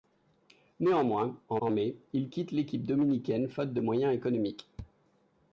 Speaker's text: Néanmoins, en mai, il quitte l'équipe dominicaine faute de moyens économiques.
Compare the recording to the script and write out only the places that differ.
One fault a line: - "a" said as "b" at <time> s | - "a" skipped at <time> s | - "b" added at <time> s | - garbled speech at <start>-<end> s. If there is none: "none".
- "en" added at 1.6 s